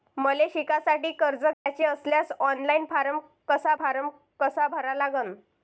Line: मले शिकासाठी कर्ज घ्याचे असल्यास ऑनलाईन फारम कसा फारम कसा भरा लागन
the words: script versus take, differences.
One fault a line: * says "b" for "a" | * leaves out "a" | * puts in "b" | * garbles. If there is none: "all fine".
all fine